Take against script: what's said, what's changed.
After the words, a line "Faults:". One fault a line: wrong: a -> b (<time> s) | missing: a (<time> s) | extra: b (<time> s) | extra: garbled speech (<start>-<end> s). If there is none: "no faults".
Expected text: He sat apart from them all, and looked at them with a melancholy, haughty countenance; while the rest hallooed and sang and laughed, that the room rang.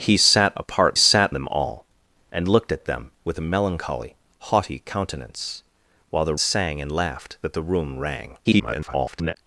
He sat apart sat them all, and looked at them with a melancholy, haughty countenance; while the sang and laughed, that the room rang. [garbled]
Faults:
wrong: from -> sat (1.0 s)
missing: rest hallooed and (6.3 s)
extra: garbled speech (8.4-9.4 s)